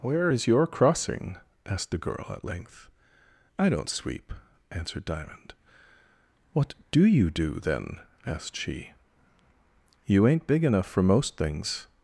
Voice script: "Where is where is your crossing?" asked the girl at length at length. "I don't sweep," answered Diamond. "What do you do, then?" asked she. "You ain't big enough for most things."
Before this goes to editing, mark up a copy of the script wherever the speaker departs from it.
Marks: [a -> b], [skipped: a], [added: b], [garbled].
"Where is [skipped: where is] your crossing?" asked the girl at length [skipped: at length.] "I don't sweep," answered Diamond. "What do you do, then?" asked she. "You ain't big enough for most things."